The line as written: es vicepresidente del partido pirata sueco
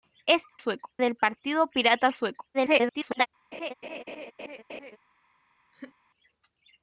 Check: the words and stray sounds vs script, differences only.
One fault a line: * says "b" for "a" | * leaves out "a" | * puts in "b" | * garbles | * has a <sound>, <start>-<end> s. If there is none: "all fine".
* says "sueco" for "vicepresidente"
* garbles
* has a laugh, 3.5-5.0 s
* has a laugh, 5.7-6.0 s